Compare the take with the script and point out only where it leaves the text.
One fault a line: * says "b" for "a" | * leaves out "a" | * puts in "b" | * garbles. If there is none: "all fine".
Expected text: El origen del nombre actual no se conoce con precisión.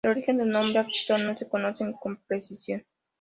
all fine